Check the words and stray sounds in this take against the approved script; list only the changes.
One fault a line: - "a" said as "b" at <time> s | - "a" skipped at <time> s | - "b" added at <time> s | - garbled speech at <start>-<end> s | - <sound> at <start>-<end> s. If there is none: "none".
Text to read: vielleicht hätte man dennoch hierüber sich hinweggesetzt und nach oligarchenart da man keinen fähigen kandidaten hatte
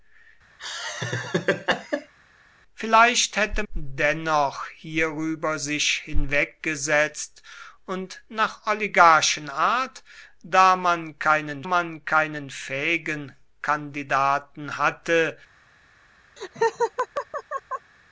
- laugh at 0.6-2.1 s
- "man" skipped at 3.6 s
- "man keinen" added at 11.6 s
- laugh at 16.4-17.9 s